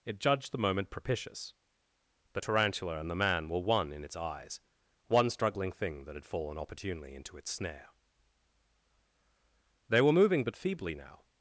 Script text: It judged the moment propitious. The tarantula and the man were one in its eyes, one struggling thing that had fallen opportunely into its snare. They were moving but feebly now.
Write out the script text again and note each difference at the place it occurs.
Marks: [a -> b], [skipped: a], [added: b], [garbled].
It judged the moment propitious. The tarantula and the man were one in its eyes, one struggling thing that had fallen opportunely into its snare. They were moving but feebly now.